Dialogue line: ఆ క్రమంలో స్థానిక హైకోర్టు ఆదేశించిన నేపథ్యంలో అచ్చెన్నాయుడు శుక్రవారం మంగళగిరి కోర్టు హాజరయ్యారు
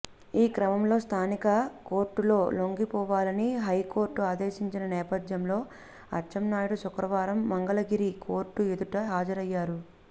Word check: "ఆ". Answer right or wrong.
wrong